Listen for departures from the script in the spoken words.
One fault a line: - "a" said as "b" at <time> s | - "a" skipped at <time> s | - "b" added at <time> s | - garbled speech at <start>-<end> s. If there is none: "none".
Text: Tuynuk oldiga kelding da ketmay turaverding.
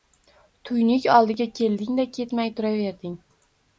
none